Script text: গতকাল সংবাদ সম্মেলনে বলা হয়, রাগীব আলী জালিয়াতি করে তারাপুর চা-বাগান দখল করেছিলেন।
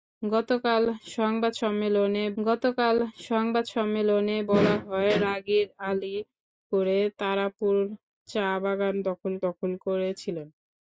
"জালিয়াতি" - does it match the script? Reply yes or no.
no